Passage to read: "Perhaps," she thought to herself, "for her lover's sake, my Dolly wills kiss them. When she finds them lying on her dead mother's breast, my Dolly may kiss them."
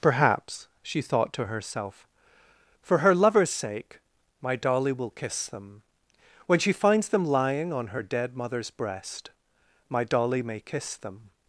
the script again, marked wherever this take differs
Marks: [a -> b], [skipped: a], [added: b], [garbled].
"Perhaps," she thought to herself, "for her lover's sake, my Dolly [wills -> will] kiss them. When she finds them lying on her dead mother's breast, my Dolly may kiss them."